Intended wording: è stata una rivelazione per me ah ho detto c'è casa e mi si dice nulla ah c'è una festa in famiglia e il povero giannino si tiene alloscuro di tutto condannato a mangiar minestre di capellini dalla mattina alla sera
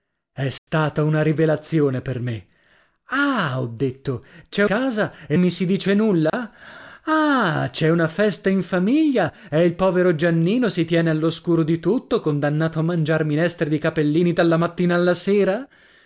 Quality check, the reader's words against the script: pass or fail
pass